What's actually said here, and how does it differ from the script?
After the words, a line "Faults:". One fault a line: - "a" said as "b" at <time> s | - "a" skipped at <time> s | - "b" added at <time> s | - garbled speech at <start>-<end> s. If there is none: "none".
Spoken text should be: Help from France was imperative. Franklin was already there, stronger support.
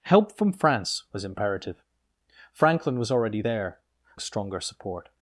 Help from France was imperative. Franklin was already there, stronger support.
Faults:
none